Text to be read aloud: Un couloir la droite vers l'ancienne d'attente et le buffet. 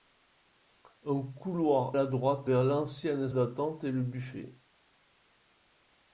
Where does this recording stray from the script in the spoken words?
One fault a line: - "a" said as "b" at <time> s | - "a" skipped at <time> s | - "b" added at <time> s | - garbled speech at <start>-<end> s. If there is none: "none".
none